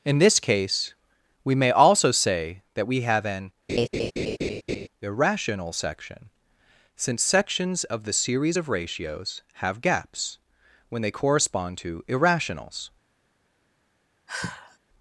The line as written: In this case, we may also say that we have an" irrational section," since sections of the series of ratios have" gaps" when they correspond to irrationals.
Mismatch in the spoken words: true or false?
false